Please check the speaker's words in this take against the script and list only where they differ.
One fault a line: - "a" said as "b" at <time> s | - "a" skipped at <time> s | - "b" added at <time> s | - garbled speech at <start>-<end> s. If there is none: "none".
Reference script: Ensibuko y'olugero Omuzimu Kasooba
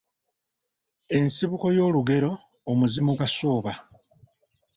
none